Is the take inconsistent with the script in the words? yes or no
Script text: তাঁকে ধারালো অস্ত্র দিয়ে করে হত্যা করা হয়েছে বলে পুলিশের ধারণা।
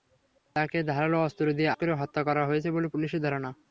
no